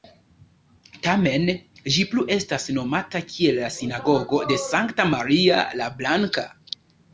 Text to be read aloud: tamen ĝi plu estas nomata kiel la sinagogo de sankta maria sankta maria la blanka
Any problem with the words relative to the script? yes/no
yes